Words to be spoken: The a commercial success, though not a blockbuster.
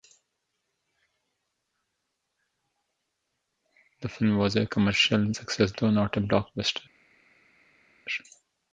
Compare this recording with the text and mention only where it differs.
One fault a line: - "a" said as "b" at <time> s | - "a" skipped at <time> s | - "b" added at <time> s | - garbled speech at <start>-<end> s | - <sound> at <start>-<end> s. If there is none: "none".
- "film was" added at 4.1 s